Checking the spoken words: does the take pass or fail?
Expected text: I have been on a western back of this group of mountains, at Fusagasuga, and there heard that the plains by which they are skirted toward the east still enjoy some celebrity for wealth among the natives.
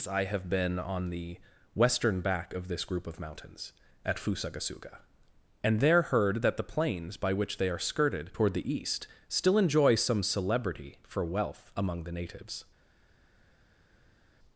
fail